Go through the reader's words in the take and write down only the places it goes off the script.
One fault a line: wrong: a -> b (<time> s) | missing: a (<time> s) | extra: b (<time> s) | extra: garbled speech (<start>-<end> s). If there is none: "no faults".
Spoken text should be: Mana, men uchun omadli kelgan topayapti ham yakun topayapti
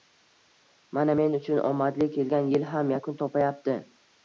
wrong: topayapti -> yil (2.5 s)